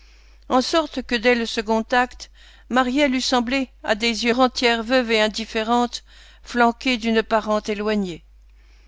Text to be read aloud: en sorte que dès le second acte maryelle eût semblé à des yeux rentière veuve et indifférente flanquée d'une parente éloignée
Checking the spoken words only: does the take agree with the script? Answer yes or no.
yes